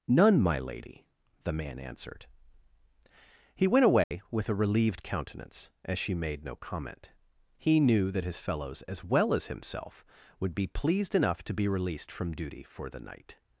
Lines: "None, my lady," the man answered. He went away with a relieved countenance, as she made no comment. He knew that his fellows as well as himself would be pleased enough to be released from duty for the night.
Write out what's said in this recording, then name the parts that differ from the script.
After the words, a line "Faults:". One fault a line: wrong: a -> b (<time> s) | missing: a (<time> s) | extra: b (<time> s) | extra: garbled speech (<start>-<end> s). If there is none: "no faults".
"None, my lady," the man answered. He went away with a relieved countenance, as she made no comment. He knew that his fellows as well as himself would be pleased enough to be released from duty for the night.
Faults:
no faults